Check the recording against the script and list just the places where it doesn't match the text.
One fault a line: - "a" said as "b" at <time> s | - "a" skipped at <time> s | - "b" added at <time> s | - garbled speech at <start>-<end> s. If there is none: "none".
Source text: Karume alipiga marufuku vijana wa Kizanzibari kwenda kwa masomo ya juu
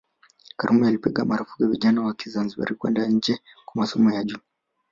- "nje" added at 3.1 s